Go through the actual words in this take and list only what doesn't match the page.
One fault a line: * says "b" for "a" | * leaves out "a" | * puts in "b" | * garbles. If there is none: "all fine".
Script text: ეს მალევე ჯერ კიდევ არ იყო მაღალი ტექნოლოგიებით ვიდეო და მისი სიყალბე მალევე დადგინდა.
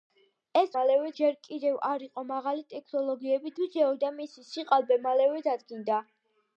all fine